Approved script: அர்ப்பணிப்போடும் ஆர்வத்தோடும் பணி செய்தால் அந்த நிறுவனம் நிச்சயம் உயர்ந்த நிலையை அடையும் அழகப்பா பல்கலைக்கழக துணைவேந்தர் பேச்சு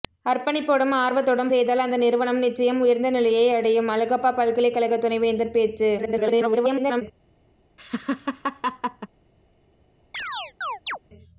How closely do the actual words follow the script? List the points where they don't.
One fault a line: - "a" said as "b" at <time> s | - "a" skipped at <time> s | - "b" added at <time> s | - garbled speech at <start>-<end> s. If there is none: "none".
- "பணி" skipped at 1.5 s
- garbled speech at 6.0-7.0 s